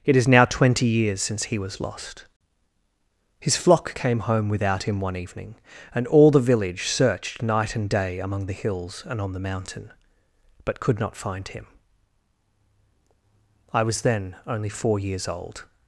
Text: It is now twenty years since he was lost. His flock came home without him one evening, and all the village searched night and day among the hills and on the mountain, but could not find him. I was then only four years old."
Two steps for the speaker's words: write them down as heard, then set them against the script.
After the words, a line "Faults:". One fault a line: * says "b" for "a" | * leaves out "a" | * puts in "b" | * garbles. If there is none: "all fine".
It is now twenty years since he was lost. His flock came home without him one evening, and all the village searched night and day among the hills and on the mountain, but could not find him. I was then only four years old."
Faults:
all fine